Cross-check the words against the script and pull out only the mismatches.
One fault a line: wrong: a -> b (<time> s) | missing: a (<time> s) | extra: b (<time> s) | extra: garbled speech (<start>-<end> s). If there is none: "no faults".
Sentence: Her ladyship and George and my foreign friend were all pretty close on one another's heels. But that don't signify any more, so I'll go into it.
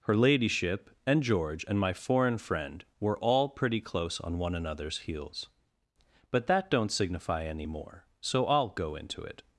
no faults